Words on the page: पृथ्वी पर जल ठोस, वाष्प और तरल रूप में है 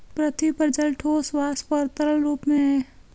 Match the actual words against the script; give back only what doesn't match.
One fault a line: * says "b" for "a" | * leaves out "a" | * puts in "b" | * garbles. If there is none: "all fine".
all fine